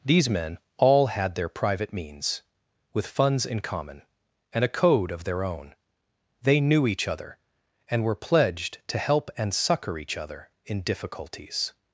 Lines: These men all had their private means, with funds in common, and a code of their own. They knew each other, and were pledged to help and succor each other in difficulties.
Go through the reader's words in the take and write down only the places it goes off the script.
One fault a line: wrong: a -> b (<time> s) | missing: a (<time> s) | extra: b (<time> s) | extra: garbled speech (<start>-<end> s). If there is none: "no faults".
no faults